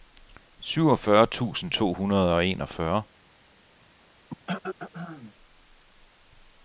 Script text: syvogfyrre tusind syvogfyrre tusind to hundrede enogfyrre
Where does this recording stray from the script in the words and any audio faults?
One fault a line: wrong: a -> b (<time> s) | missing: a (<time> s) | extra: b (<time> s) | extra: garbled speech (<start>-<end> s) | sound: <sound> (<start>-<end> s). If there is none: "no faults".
missing: syvogfyrre tusind (1.7 s)
extra: og (2.4 s)
sound: throat clearing (4.3-5.3 s)